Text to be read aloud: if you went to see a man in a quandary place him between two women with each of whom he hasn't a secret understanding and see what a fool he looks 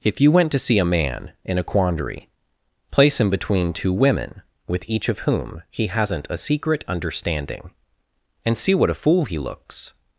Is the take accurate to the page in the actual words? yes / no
yes